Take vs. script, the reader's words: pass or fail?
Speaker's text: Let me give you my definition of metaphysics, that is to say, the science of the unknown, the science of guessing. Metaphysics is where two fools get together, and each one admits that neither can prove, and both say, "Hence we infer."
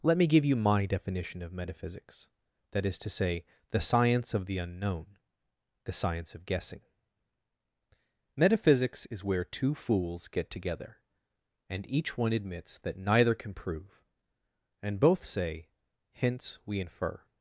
pass